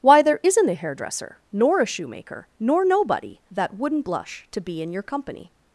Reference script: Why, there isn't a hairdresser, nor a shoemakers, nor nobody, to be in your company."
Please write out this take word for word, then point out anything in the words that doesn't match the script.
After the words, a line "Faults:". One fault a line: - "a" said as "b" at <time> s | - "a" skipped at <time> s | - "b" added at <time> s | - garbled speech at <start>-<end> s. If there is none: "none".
Why, there isn't a hairdresser, nor a shoemaker, nor nobody, that wouldn't blush to be in your company."
Faults:
- "shoemakers" said as "shoemaker" at 1.9 s
- "that wouldn't blush" added at 3.5 s